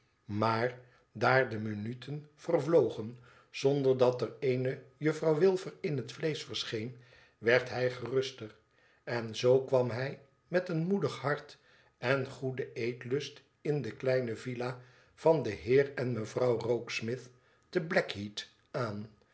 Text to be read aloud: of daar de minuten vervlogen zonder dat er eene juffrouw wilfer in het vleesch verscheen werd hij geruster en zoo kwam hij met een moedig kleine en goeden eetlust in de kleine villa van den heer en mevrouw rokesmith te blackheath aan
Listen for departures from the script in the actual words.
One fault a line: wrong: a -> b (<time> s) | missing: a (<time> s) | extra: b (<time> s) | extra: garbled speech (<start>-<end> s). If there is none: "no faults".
wrong: of -> maar (0.2 s)
wrong: kleine -> hart (11.2 s)